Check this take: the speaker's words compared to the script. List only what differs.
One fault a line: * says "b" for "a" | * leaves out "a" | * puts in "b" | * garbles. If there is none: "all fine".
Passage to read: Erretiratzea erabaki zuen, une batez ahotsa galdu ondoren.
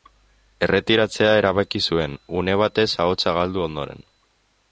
all fine